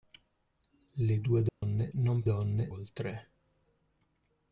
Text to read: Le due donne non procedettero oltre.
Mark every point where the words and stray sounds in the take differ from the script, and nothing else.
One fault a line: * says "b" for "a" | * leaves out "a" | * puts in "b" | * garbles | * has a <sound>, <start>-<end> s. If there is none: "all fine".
* has a dropout, 1.5-1.6 s
* says "donne" for "procedettero"